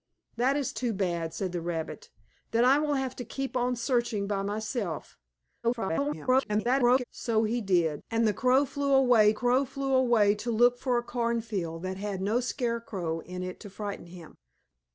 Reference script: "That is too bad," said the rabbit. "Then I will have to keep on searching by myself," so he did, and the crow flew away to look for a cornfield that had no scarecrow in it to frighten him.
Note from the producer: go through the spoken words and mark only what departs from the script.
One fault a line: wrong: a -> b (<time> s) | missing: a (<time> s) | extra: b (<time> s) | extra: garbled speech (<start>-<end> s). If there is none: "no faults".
extra: garbled speech (5.6-7.0 s)
extra: crow flew away (9.3 s)